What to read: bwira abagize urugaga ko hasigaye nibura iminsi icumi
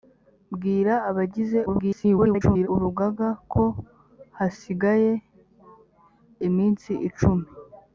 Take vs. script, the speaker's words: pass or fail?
fail